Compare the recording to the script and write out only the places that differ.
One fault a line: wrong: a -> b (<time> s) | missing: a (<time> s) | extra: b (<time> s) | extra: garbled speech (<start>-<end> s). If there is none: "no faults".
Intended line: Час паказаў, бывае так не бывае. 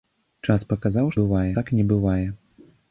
no faults